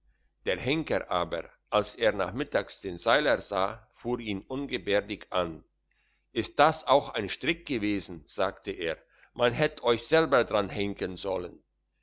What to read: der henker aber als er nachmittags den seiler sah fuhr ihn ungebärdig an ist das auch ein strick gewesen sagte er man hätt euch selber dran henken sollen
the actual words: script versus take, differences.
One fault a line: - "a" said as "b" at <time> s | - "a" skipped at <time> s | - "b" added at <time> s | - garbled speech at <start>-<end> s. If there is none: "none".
none